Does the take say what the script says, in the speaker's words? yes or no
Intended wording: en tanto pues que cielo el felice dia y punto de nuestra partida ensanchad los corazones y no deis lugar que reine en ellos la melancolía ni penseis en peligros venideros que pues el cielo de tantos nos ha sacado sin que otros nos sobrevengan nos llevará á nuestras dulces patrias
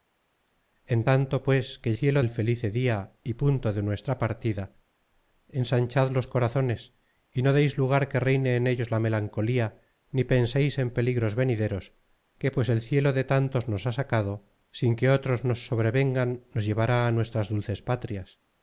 yes